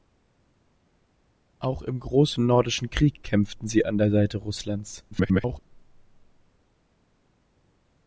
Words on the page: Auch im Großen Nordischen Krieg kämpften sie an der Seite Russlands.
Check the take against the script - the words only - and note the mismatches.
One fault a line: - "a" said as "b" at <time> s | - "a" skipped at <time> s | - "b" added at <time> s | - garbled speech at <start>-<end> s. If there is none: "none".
- garbled speech at 5.1-5.6 s